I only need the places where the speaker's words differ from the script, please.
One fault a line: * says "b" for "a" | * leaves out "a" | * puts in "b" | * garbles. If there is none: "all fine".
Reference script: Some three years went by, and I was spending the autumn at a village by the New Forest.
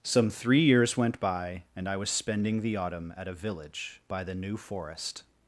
all fine